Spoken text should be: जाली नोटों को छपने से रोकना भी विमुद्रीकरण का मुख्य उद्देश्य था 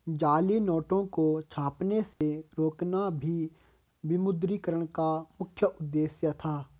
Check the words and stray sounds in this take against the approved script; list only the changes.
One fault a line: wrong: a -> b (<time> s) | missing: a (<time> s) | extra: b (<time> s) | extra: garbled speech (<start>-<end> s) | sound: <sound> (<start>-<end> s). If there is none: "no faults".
sound: dropout (2.1-2.2 s)